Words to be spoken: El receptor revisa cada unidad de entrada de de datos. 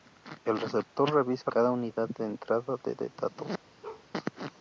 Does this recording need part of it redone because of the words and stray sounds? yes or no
yes